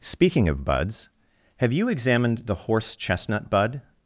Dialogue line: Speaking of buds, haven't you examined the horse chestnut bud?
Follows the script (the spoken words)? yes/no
no